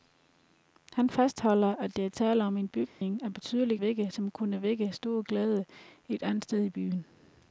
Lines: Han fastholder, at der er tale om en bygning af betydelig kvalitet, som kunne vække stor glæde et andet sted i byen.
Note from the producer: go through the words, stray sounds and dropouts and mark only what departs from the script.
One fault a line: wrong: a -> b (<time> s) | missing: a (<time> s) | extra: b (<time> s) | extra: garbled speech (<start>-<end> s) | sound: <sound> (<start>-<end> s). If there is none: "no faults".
sound: dropout (2.9-3.0 s)
wrong: kvalitet -> vække (3.8 s)